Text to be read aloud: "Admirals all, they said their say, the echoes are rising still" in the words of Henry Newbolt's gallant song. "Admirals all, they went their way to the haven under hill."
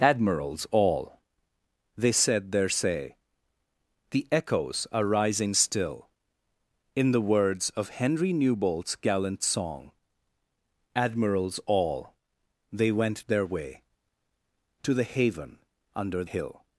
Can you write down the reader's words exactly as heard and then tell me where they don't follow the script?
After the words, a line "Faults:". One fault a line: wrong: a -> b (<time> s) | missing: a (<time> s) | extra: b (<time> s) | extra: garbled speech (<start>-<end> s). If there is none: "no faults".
"Admirals all, they said their say, the echoes are rising still" in the words of Henry Newbolt's gallant song. "Admirals all, they went their way to the haven under hill."
Faults:
no faults